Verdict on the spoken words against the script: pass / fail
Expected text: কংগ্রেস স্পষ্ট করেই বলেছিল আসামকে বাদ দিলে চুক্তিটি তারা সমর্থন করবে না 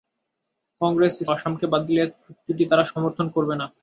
fail